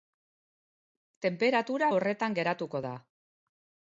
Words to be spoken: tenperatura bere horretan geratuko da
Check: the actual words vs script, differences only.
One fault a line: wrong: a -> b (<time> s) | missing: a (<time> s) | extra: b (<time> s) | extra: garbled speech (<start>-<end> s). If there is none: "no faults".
missing: bere (1.9 s)